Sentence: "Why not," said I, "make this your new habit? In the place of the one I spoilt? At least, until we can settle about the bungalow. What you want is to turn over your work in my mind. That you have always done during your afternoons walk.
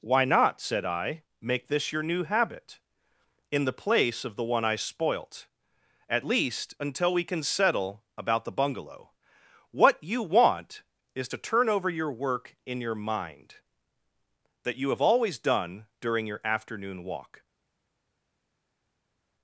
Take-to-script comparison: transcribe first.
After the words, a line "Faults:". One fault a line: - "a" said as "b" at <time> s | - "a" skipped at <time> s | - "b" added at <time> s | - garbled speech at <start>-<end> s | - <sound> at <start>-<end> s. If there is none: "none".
"Why not," said I, "make this your new habit? In the place of the one I spoilt? At least, until we can settle about the bungalow. What you want is to turn over your work in your mind. That you have always done during your afternoon walk.
Faults:
- "my" said as "your" at 12.8 s
- "afternoons" said as "afternoon" at 16.4 s